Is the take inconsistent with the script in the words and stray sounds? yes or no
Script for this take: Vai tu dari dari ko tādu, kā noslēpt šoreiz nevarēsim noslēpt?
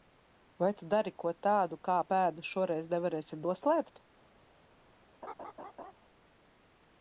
yes